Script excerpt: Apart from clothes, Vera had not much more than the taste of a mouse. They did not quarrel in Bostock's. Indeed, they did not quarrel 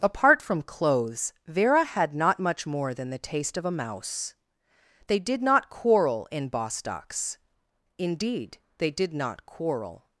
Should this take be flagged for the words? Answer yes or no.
no